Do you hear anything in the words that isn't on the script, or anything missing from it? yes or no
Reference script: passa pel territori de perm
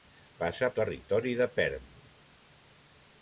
yes